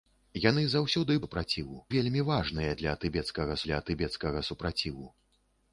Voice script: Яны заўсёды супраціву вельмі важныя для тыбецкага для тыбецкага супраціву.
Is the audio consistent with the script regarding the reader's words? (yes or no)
yes